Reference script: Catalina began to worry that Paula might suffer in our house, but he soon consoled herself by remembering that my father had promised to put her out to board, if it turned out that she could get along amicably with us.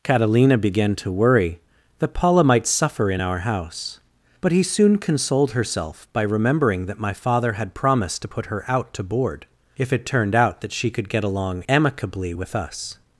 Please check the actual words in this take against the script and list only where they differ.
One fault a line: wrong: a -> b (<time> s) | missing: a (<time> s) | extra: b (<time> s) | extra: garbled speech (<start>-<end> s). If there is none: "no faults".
no faults